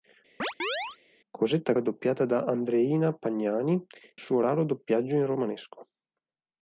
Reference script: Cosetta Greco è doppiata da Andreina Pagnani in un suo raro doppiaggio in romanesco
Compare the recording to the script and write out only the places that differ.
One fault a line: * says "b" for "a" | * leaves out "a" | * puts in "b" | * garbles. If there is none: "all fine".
* leaves out "Greco"
* leaves out "in un"